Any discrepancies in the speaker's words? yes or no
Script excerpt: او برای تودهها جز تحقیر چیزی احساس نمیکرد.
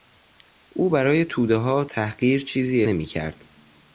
yes